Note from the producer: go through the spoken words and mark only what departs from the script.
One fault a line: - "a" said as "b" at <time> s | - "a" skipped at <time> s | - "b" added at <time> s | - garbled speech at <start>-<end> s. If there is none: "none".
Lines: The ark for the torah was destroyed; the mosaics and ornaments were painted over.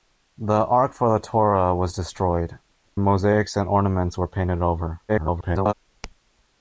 - "the" skipped at 2.6 s
- garbled speech at 5.1-5.7 s